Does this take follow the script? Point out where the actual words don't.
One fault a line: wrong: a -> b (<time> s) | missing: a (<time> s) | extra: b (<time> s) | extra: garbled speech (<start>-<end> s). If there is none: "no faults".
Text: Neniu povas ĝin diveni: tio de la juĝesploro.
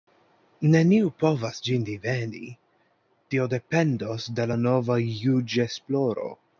extra: dependos (3.5 s)
extra: nova (4.7 s)